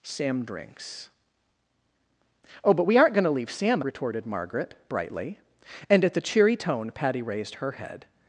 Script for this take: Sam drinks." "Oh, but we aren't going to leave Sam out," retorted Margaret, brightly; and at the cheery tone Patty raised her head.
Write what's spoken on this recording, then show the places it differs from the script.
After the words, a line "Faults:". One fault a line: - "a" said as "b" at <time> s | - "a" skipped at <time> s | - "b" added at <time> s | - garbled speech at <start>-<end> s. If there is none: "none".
Sam drinks." "Oh, but we aren't going to leave Sam," retorted Margaret, brightly; and at the cheery tone Patty raised her head.
Faults:
- "out" skipped at 3.8 s